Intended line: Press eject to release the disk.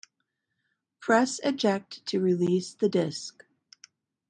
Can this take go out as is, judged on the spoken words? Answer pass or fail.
pass